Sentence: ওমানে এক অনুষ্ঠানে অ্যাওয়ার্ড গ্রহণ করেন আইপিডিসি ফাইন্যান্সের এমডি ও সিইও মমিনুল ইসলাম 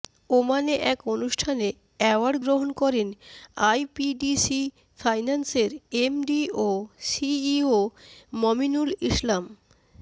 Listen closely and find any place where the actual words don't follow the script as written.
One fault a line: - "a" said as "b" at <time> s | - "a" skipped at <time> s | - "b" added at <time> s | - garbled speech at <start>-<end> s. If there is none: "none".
none